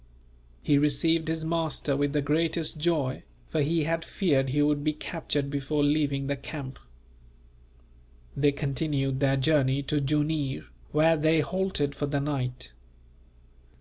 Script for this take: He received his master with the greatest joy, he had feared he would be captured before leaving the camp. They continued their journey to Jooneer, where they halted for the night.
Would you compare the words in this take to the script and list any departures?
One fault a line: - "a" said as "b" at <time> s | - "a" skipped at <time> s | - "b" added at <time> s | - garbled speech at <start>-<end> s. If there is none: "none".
- "for" added at 3.5 s